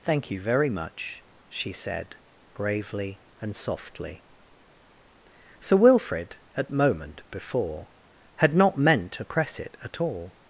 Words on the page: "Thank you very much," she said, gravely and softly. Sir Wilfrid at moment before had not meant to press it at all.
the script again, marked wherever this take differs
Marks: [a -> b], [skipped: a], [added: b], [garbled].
"Thank you very much," she said, gravely and softly. Sir Wilfrid at moment before had not meant to press it at all.